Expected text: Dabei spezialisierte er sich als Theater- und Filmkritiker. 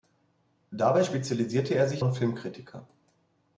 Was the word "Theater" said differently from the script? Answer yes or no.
yes